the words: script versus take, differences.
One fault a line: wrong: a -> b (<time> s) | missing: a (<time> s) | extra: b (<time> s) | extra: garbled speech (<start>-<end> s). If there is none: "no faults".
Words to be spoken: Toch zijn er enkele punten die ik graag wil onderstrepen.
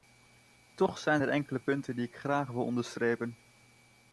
no faults